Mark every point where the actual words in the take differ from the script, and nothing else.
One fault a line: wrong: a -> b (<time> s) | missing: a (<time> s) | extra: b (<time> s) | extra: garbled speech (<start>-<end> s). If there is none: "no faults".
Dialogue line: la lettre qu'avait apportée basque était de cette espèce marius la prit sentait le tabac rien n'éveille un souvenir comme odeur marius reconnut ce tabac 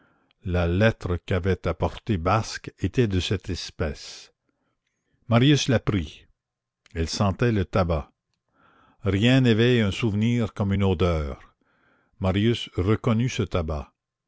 extra: elle (7.0 s)
extra: une (10.7 s)